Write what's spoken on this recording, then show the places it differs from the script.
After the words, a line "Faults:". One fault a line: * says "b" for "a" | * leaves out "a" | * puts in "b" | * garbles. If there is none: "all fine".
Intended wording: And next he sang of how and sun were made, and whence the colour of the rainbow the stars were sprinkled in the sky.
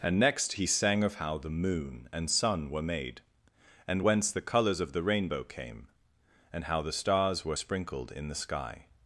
And next he sang of how the moon and sun were made, and whence the colours of the rainbow came, and how the stars were sprinkled in the sky.
Faults:
* puts in "the moon"
* says "colours" for "colour"
* puts in "came and how"